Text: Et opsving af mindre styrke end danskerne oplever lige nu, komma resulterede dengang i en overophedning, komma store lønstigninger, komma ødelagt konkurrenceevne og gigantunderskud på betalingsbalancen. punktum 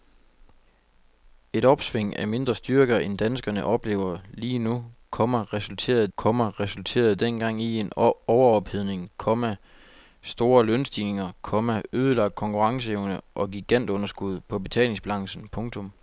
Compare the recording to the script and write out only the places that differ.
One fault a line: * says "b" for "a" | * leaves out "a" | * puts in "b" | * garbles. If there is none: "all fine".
* puts in "komma resulterede"